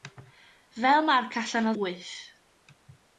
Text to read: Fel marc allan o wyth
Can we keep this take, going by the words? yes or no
yes